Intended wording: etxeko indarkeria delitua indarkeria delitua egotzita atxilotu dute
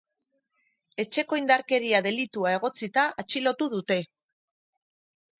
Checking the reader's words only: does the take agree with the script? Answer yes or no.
no